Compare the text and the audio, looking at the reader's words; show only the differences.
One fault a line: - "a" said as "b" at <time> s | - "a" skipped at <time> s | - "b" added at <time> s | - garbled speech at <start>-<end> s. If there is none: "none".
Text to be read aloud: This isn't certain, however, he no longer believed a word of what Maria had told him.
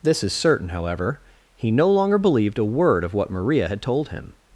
- "isn't" said as "is" at 0.2 s